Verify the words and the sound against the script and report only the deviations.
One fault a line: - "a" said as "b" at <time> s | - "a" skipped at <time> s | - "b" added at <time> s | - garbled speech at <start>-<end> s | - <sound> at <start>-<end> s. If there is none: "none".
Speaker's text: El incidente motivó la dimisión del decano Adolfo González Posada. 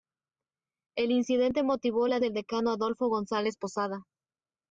- "dimisión" skipped at 2.2 s